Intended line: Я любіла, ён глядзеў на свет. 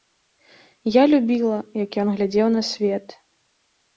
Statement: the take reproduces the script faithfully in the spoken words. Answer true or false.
false